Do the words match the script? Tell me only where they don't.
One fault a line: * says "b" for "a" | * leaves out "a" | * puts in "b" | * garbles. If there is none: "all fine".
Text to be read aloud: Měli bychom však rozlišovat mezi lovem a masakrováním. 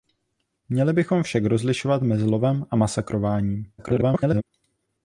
* garbles